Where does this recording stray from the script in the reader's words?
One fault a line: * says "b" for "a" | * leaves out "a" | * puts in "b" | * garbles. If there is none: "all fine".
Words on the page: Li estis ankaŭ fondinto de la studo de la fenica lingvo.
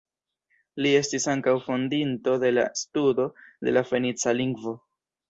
all fine